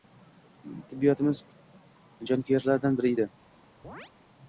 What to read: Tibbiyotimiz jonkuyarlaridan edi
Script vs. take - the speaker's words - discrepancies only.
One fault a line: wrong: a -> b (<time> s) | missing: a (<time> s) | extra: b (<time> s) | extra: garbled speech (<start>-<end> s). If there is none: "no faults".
extra: biri (3.0 s)